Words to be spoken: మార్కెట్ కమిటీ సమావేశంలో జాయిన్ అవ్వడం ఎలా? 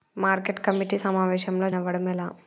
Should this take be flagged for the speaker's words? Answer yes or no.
yes